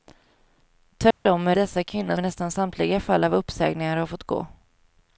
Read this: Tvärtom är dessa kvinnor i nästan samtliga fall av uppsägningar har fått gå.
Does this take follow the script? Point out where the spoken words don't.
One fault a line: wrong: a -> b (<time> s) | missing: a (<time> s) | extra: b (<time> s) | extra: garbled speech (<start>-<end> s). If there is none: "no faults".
no faults